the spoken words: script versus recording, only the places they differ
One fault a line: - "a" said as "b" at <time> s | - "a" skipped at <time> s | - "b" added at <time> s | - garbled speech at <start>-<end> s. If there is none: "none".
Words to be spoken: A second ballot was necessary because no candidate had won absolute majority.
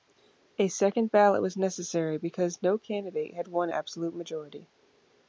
none